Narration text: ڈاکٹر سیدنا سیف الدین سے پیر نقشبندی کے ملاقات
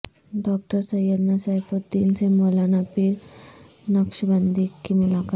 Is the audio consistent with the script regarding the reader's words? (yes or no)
no